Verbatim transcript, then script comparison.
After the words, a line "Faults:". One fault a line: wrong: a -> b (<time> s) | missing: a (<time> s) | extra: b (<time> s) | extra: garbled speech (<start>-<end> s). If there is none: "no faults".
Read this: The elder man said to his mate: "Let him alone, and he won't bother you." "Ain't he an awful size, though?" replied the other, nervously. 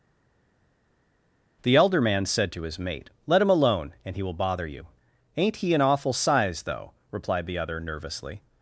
The elder man said to his mate: "Let him alone, and he will bother you." "Ain't he an awful size, though?" replied the other, nervously.
Faults:
wrong: won't -> will (4.2 s)